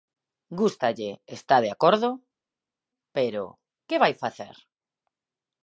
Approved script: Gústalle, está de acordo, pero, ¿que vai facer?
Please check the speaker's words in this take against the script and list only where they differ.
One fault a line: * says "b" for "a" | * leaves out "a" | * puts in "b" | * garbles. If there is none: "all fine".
all fine